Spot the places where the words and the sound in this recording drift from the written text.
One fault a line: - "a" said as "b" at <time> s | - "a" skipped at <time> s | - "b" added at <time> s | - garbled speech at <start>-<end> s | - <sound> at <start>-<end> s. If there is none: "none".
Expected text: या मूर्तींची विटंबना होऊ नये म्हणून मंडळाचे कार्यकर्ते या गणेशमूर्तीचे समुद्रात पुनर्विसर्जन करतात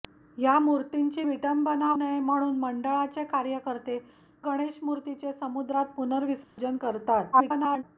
- "होऊ" skipped at 1.9 s
- "या" skipped at 4.0 s
- dropout at 6.4-6.6 s
- garbled speech at 7.3-7.8 s